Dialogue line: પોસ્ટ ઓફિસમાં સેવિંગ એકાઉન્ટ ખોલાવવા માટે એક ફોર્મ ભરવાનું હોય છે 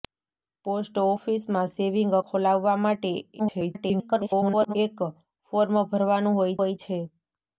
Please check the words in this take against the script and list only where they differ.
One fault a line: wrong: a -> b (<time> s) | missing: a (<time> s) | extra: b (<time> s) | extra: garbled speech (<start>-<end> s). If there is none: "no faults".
missing: એકાઉન્ટ (2.2 s)
extra: garbled speech (3.4-4.8 s)
extra: હોય (6.6 s)